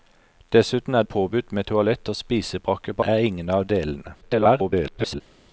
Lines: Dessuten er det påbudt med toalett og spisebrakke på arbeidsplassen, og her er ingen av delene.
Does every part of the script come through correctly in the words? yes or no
no